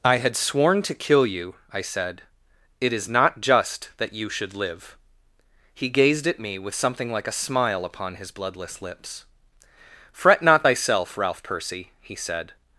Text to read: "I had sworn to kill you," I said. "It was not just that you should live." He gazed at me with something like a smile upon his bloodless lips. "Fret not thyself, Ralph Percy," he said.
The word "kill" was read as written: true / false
true